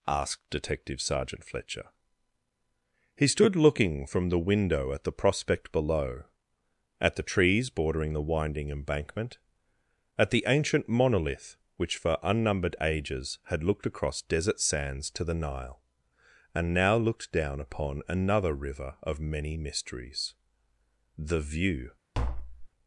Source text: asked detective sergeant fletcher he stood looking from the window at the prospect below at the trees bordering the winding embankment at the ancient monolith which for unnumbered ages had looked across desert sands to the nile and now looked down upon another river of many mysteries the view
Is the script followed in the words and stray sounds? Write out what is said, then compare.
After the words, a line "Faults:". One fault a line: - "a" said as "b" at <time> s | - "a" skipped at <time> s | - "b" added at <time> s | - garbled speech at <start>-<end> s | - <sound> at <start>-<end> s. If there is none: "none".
asked detective sergeant fletcher he stood looking from the window at the prospect below at the trees bordering the winding embankment at the ancient monolith which for unnumbered ages had looked across desert sands to the nile and now looked down upon another river of many mysteries the view
Faults:
- tap at 22.1-22.7 s